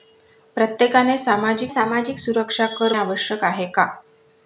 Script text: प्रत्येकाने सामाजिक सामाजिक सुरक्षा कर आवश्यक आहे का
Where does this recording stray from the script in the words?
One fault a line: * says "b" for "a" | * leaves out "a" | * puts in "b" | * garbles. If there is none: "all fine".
all fine